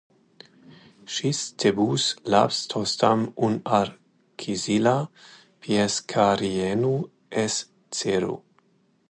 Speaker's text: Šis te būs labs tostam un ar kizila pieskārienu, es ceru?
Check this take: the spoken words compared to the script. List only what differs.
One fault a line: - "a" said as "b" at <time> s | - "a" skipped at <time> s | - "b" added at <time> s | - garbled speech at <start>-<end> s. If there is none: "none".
none